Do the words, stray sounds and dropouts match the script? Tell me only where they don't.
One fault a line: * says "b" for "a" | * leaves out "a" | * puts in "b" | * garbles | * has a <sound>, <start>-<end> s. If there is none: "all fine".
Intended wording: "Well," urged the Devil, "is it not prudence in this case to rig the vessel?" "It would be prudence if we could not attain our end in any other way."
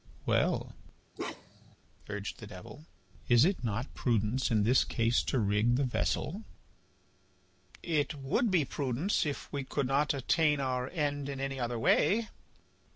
* has a bark, 1.2-1.8 s